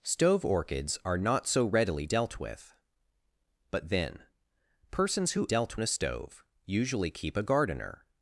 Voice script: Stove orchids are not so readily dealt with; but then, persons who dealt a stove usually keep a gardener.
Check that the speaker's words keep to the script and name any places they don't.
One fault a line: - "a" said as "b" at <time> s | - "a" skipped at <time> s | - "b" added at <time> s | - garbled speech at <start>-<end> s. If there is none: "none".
none